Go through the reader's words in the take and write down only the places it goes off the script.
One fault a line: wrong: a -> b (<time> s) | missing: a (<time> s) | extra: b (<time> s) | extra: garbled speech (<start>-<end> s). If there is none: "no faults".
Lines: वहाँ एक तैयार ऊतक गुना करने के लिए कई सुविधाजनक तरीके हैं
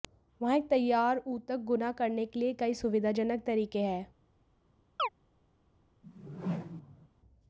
no faults